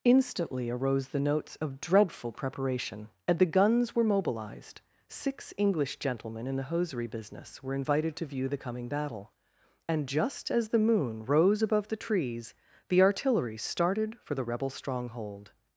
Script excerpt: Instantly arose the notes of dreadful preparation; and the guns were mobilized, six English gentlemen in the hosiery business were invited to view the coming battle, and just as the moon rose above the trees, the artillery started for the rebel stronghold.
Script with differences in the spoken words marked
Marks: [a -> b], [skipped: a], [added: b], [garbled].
Instantly arose the notes of dreadful preparation; and the guns were mobilized, six English gentlemen in the hosiery business were invited to view the coming battle, and just as the moon rose above the trees, the artillery started for the rebel stronghold.